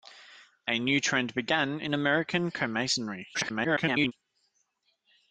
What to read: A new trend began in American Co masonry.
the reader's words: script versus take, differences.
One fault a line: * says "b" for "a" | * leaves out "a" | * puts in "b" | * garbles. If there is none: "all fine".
* garbles